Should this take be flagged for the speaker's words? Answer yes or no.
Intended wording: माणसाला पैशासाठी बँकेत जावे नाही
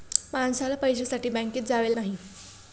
no